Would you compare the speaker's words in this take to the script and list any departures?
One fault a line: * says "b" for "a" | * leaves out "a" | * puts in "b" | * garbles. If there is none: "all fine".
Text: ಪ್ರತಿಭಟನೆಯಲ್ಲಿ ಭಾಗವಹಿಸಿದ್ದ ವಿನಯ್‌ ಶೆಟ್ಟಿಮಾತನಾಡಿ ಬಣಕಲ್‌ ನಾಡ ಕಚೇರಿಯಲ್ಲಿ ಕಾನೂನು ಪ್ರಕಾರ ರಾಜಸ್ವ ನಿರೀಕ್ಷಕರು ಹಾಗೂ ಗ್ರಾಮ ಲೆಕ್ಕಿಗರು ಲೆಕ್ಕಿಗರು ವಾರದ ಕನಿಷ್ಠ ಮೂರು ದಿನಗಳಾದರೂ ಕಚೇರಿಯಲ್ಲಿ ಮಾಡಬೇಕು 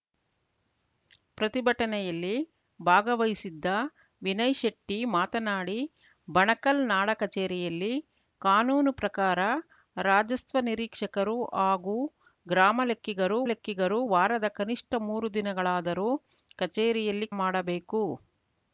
all fine